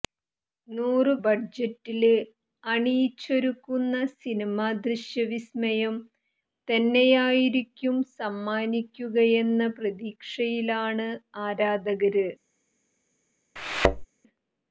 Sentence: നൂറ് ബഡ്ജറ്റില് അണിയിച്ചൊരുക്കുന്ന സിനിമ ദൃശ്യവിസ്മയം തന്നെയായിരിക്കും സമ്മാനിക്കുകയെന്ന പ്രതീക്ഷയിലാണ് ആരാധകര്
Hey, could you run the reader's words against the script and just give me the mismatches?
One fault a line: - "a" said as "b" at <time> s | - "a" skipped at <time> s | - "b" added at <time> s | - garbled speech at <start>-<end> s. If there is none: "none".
none